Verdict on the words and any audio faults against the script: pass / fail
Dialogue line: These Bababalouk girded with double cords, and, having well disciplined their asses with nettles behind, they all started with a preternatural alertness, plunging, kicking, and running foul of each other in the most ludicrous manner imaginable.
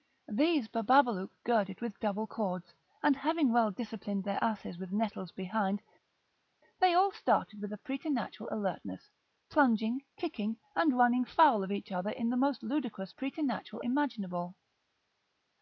fail